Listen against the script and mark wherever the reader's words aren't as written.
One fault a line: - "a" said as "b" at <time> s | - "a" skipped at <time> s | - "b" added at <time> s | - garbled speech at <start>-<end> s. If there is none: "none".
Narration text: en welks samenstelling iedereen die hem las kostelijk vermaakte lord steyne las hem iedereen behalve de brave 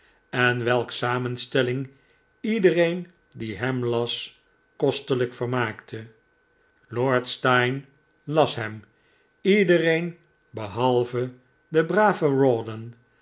none